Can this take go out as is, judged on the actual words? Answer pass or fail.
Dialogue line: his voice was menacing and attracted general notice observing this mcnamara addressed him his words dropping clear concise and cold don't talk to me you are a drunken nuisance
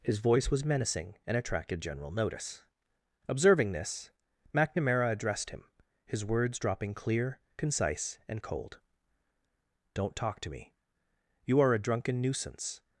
pass